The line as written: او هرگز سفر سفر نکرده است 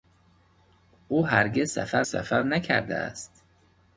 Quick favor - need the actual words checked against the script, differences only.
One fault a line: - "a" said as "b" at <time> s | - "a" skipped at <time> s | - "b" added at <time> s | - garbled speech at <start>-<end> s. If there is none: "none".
none